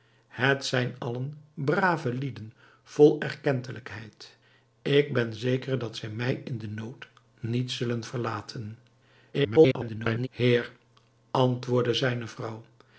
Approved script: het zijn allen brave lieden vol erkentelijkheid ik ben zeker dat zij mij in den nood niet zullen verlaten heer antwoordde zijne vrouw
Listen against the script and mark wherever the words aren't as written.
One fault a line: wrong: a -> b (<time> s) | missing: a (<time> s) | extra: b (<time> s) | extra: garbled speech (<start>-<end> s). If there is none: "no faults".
extra: garbled speech (9.3-10.3 s)